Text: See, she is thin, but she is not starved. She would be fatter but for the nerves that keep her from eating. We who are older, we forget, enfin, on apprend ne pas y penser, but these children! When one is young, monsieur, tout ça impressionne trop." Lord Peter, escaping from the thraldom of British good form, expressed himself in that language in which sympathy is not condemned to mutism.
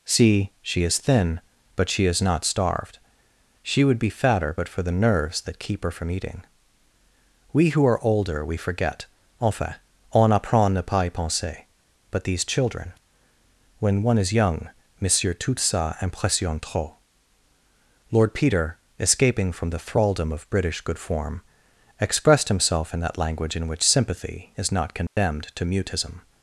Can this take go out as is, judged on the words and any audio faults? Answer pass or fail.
fail